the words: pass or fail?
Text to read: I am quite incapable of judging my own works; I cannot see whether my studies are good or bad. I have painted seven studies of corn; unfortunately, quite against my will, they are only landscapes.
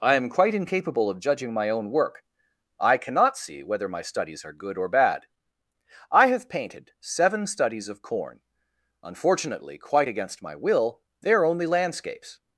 fail